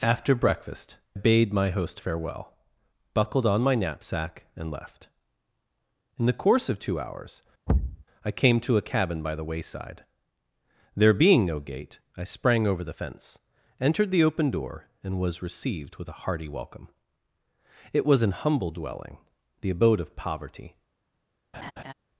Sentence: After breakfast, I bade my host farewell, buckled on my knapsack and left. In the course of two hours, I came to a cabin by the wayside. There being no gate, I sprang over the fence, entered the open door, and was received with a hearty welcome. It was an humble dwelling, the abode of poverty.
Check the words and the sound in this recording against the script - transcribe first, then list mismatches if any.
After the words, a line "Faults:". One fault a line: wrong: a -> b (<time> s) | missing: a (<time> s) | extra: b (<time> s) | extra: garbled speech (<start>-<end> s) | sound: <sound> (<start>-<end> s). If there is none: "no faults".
After breakfast, bade my host farewell, buckled on my knapsack and left. In the course of two hours, I came to a cabin by the wayside. There being no gate, I sprang over the fence, entered the open door, and was received with a hearty welcome. It was an humble dwelling, the abode of poverty.
Faults:
missing: I (1.0 s)
sound: thud (7.7-8.0 s)
sound: laugh (21.5-21.9 s)